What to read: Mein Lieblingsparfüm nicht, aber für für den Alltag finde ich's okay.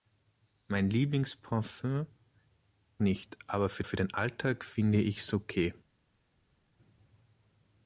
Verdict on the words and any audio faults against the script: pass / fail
pass